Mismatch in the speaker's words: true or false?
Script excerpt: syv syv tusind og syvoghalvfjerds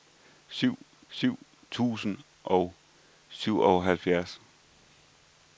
false